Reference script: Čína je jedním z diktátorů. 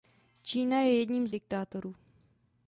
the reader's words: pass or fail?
pass